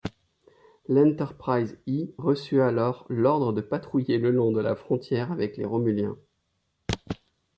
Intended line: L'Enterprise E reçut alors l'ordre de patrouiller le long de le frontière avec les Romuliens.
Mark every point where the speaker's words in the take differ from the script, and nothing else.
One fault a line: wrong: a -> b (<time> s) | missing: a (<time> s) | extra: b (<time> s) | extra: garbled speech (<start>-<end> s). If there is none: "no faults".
wrong: le -> la (4.6 s)